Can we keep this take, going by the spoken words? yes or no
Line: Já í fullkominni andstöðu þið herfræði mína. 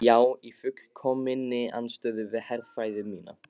no